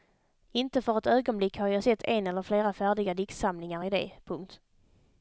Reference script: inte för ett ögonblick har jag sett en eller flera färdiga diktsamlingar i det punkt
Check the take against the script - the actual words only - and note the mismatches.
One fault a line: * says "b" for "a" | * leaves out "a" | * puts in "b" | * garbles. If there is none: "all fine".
all fine